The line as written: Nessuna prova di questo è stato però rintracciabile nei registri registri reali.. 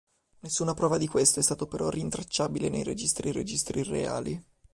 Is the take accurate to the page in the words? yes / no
yes